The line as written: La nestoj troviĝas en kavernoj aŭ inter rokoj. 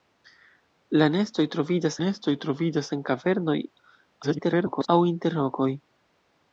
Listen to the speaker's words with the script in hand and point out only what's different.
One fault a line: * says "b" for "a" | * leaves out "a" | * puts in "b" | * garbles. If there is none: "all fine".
* puts in "nestoj troviĝas"
* garbles